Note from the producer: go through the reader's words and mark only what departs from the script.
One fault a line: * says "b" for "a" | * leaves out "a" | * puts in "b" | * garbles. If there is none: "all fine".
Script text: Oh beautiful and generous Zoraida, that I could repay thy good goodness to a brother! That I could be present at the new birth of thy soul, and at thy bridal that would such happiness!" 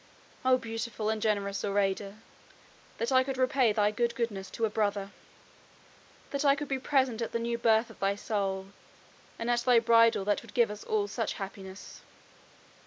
* puts in "give us all"